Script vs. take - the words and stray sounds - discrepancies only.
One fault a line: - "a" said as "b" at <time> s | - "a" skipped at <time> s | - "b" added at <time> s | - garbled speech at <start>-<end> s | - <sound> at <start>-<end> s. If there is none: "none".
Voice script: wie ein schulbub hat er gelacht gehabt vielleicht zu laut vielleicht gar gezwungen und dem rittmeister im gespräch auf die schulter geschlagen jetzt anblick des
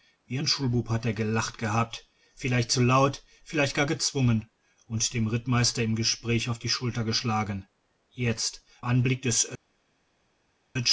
none